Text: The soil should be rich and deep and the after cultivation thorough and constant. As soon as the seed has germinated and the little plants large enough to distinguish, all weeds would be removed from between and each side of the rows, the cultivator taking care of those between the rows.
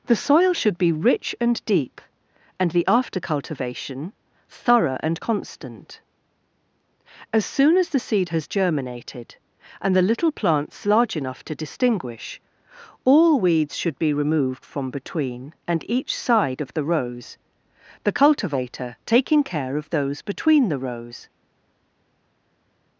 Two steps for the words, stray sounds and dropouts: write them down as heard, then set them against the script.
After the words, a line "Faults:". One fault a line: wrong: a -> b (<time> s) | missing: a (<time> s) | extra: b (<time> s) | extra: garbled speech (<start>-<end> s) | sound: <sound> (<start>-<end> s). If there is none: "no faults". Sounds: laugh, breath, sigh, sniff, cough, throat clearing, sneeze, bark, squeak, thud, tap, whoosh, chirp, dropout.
The soil should be rich and deep and the after cultivation thorough and constant. As soon as the seed has germinated and the little plants large enough to distinguish, all weeds should be removed from between and each side of the rows, the cultivator taking care of those between the rows.
Faults:
wrong: would -> should (13.8 s)